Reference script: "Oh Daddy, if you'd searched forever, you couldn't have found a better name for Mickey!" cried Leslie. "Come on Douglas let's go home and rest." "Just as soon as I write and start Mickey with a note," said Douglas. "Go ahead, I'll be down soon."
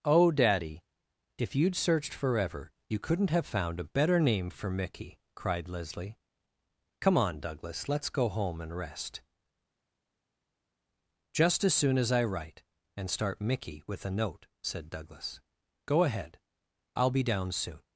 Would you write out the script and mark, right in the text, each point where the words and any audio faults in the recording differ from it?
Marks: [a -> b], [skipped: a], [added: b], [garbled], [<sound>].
"Oh Daddy, if you'd searched forever, you couldn't have found a better name for Mickey!" cried Leslie. "Come on Douglas let's go home and rest." "Just as soon as I write and start Mickey with a note," said Douglas. "Go ahead, I'll be down soon."